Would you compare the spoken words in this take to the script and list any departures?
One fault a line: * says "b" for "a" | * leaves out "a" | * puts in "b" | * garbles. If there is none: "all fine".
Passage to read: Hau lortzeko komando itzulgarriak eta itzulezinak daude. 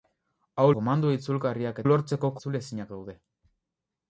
* leaves out "lortzeko"
* says "lortzeko" for "eta"